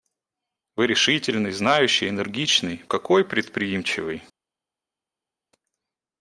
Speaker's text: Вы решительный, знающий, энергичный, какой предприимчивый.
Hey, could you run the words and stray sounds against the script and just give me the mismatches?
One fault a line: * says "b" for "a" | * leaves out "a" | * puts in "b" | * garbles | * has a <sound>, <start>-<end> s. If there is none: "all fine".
all fine